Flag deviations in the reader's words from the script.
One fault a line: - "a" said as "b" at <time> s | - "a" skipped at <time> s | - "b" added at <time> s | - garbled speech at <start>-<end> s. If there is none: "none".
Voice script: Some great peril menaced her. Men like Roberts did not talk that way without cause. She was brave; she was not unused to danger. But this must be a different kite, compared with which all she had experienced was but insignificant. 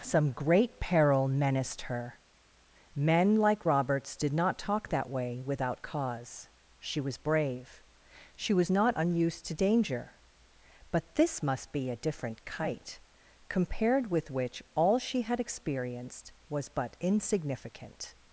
none